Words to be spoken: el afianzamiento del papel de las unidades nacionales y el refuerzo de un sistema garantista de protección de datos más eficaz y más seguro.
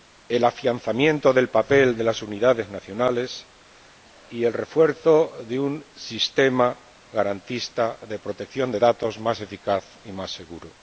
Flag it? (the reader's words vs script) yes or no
no